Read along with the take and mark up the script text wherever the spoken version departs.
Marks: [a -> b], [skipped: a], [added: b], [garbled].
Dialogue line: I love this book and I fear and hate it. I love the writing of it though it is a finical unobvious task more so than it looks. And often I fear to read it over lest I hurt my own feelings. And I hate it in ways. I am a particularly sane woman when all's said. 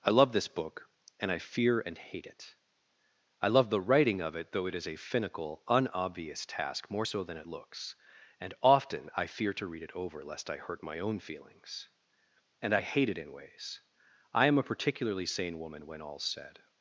I love this book and I fear and hate it. I love the writing of it though it is a finical unobvious task more so than it looks. And often I fear to read it over lest I hurt my own feelings. And I hate it in ways. I am a particularly sane woman when all's said.